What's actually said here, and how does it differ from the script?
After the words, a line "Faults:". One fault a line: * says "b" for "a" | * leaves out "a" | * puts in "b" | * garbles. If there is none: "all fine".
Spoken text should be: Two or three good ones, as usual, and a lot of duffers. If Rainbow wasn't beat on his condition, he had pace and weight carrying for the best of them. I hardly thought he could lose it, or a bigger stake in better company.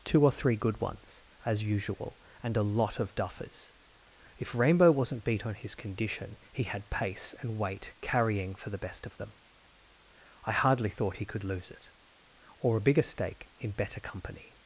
Two or three good ones, as usual, and a lot of duffers. If Rainbow wasn't beat on his condition, he had pace and weight carrying for the best of them. I hardly thought he could lose it, or a bigger stake in better company.
Faults:
all fine